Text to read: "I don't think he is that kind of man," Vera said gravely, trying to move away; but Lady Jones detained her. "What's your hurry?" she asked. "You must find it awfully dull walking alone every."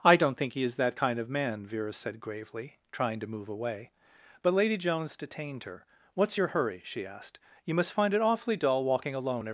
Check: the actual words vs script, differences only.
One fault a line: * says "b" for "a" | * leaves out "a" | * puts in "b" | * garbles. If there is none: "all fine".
all fine